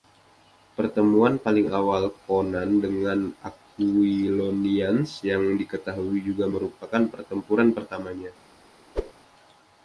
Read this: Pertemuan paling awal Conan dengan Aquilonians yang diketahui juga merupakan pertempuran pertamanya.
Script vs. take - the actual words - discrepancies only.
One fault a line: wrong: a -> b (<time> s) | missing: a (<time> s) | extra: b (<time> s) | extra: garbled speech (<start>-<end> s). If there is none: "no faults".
no faults